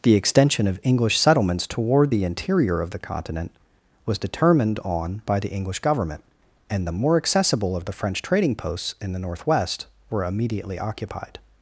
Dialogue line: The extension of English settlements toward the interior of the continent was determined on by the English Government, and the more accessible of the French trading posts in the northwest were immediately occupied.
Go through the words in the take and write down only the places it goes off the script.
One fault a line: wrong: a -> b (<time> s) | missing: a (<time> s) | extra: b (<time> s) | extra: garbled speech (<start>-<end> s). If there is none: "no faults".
no faults